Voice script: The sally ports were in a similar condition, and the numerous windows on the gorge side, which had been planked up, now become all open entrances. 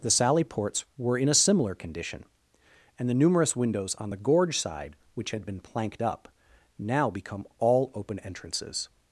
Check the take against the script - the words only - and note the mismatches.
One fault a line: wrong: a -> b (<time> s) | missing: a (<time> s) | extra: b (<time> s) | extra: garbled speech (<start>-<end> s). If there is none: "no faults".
no faults